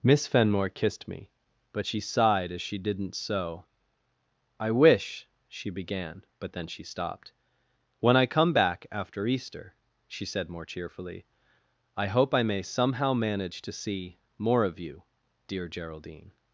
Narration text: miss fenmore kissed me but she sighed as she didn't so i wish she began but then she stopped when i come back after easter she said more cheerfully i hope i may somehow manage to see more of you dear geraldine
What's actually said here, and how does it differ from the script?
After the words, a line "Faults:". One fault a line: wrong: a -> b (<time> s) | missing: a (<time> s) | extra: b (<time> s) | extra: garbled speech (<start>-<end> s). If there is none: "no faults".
miss fenmore kissed me but she sighed as she didn't so i wish she began but then she stopped when i come back after easter she said more cheerfully i hope i may somehow manage to see more of you dear geraldine
Faults:
no faults